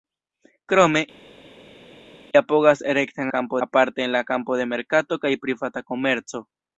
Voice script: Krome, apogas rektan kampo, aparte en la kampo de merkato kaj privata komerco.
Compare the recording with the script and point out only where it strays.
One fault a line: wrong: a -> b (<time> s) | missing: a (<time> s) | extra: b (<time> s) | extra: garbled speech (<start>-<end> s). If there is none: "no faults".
no faults